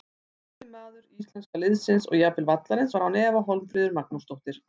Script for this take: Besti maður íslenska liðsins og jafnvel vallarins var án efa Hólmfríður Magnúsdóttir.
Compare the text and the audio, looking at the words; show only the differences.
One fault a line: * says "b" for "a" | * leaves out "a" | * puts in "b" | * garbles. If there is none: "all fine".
all fine